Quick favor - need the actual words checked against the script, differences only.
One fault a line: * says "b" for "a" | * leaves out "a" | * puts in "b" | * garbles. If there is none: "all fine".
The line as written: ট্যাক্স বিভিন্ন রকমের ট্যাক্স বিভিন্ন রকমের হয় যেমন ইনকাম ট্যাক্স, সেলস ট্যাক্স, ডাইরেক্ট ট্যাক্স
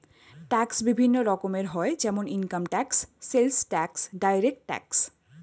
* leaves out "ট্যাক্স বিভিন্ন রকমের"